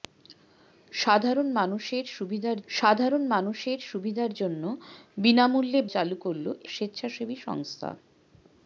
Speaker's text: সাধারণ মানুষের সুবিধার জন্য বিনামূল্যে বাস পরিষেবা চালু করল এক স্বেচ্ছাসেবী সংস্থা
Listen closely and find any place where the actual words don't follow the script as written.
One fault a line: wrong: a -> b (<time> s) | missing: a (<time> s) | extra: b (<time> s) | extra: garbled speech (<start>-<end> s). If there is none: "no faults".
extra: সাধারণ মানুষের সুবিধার (2.7 s)
missing: বাস পরিষেবা (5.8 s)
missing: এক (6.5 s)